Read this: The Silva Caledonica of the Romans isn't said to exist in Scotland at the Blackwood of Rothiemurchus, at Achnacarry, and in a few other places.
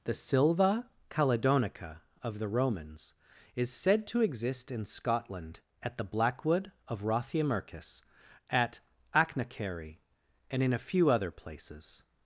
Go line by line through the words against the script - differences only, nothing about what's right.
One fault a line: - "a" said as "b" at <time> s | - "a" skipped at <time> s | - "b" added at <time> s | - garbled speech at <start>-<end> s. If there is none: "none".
- "isn't" said as "is" at 3.5 s